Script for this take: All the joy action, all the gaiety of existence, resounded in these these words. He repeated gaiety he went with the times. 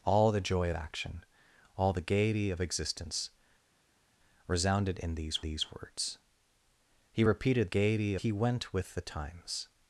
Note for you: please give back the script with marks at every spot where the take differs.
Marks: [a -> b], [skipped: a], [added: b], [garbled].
All the joy action, all the gaiety of existence, resounded in these these words. He repeated gaiety he went with the times.